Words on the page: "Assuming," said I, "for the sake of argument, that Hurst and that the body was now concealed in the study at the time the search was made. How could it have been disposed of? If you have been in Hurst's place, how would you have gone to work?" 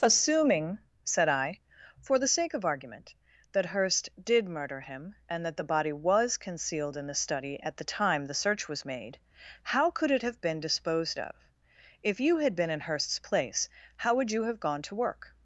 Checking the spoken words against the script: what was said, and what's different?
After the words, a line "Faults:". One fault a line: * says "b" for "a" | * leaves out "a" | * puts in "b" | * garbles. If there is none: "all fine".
"Assuming," said I, "for the sake of argument, that Hurst did murder him and that the body was concealed in the study at the time the search was made. How could it have been disposed of? If you had been in Hurst's place, how would you have gone to work?"
Faults:
* puts in "did murder him"
* leaves out "now"
* says "had" for "have"